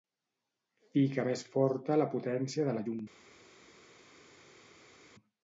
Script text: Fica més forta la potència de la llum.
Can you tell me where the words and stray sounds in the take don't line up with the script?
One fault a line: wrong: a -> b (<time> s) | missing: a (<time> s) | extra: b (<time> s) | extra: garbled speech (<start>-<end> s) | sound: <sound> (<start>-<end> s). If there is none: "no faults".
no faults